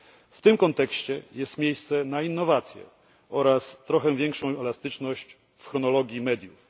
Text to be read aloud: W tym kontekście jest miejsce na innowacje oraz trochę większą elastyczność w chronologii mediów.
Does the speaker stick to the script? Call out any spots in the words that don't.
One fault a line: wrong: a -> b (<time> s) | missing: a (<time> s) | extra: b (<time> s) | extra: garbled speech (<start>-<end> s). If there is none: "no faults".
no faults